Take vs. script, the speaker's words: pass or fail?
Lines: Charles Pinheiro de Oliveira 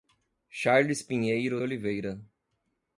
fail